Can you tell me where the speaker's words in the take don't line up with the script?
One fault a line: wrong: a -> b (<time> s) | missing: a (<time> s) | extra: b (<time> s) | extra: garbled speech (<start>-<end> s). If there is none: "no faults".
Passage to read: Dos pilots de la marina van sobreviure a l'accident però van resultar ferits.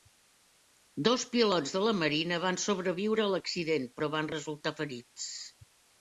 no faults